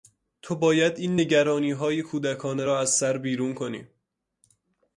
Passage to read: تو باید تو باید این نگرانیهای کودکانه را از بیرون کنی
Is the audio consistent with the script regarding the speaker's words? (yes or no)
no